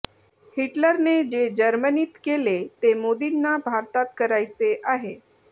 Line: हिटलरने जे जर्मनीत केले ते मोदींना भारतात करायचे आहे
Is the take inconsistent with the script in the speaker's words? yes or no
no